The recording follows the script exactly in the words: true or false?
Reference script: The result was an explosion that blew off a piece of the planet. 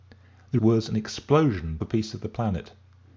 false